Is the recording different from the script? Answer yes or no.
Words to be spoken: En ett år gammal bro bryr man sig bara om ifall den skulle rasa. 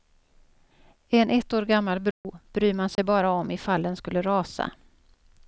no